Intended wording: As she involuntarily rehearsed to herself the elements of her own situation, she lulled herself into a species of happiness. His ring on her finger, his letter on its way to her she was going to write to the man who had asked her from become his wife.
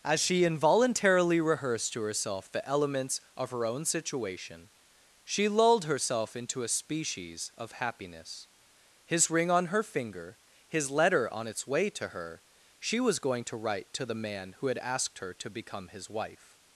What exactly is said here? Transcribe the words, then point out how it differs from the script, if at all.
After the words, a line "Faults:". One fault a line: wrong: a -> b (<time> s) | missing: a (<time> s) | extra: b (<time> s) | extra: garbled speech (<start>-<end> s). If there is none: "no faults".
As she involuntarily rehearsed to herself the elements of her own situation, she lulled herself into a species of happiness. His ring on her finger, his letter on its way to her she was going to write to the man who had asked her to become his wife.
Faults:
wrong: from -> to (15.3 s)